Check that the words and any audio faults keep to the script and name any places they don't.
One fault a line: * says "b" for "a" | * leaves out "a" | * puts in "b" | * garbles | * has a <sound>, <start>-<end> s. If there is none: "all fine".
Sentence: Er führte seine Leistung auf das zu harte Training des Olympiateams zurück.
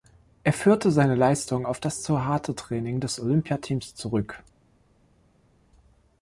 all fine